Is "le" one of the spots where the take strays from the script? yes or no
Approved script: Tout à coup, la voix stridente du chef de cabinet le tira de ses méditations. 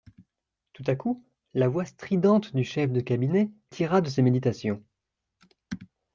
yes